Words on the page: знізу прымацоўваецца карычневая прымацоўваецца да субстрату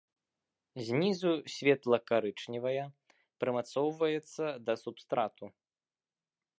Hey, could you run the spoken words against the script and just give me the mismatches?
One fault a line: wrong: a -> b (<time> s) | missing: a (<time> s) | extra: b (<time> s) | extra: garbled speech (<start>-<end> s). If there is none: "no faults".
wrong: прымацоўваецца -> светла (1.6 s)